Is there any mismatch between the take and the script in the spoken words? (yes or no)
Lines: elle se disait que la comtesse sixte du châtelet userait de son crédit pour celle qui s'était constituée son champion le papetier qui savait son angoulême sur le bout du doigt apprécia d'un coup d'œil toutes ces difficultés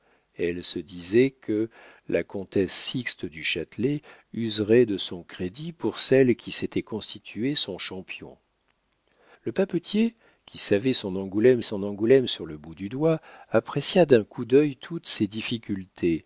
yes